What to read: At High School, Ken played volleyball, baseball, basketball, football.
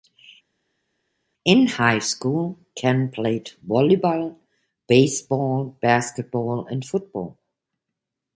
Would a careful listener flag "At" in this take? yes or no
yes